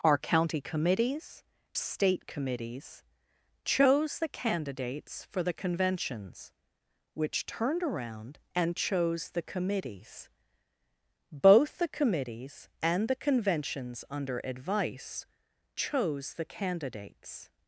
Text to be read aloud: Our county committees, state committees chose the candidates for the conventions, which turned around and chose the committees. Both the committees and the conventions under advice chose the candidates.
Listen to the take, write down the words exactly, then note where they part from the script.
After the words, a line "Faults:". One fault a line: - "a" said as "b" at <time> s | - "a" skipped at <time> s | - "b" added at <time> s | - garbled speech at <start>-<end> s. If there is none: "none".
Our county committees, state committees chose the candidates for the conventions, which turned around and chose the committees. Both the committees and the conventions under advice chose the candidates.
Faults:
none